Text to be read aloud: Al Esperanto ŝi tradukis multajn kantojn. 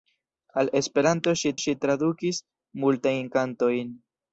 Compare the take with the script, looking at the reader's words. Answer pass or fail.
fail